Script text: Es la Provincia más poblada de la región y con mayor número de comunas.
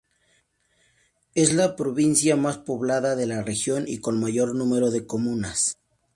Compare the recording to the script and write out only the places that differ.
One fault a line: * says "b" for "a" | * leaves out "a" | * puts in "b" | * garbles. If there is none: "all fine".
all fine